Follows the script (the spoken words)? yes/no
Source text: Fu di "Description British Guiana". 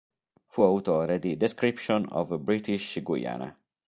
no